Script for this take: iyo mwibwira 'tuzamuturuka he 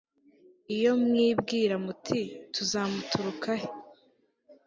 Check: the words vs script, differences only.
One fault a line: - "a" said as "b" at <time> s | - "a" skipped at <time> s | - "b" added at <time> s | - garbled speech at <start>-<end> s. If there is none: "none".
- "muti" added at 1.9 s